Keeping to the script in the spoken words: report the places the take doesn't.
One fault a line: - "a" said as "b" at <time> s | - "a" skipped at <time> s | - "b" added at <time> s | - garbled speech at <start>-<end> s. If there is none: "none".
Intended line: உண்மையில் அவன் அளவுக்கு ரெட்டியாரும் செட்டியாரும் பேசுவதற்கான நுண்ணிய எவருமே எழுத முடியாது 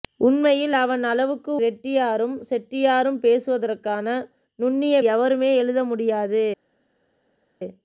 none